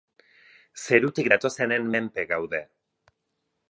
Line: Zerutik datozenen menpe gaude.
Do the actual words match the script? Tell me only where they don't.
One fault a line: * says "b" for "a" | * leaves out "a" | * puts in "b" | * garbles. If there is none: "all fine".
all fine